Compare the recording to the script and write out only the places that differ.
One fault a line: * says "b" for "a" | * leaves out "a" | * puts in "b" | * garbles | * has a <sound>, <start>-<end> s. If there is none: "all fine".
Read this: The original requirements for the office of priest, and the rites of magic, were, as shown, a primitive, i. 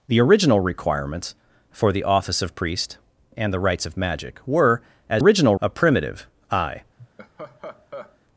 * says "original" for "shown"
* has a laugh, 7.0-8.2 s